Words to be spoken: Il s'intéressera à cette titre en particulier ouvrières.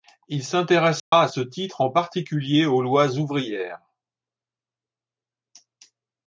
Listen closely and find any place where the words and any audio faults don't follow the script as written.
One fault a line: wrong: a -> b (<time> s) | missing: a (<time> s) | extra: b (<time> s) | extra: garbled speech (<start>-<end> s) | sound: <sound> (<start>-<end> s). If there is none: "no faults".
sound: dropout (1.0-1.1 s)
wrong: cette -> ce (1.2 s)
extra: aux lois (2.6 s)